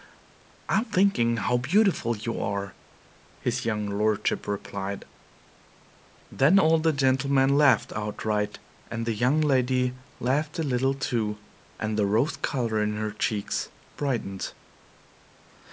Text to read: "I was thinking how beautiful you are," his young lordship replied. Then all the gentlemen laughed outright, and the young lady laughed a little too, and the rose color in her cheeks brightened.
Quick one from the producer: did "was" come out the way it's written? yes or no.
no